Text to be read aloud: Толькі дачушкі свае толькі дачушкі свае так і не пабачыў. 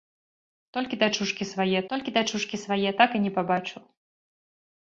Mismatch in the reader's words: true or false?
false